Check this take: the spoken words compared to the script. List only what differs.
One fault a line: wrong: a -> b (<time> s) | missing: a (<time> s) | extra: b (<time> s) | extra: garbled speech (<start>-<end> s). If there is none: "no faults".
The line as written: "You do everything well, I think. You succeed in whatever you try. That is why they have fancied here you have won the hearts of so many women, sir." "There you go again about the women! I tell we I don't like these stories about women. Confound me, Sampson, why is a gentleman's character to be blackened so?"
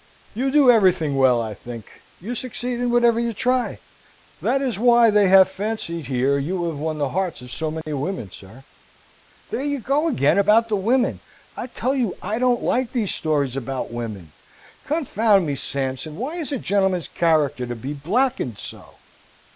wrong: we -> you (12.0 s)